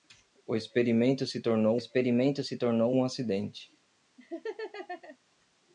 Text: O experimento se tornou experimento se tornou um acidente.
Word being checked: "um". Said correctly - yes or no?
yes